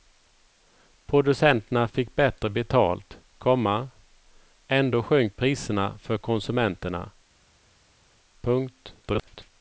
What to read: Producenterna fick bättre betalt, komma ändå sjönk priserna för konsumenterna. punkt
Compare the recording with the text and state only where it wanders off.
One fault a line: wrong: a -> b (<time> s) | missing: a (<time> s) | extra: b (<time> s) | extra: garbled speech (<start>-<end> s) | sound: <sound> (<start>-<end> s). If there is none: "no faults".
extra: garbled speech (9.0-9.5 s)